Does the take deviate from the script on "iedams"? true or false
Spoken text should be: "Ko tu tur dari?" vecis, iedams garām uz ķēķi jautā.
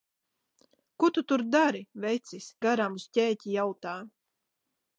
true